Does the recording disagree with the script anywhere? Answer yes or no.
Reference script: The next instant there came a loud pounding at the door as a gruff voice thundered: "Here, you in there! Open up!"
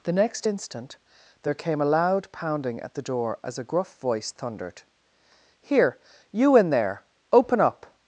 no